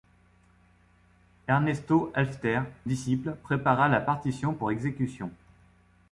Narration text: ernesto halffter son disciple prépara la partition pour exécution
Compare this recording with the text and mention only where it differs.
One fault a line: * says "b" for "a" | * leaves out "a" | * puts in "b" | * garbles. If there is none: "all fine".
* leaves out "son"